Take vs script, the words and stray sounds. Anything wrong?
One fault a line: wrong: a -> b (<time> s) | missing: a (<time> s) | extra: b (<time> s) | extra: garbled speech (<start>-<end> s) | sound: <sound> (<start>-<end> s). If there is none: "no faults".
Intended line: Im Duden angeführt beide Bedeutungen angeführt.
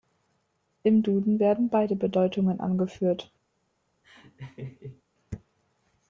wrong: angeführt -> werden (1.4 s)
sound: laugh (4.0-5.0 s)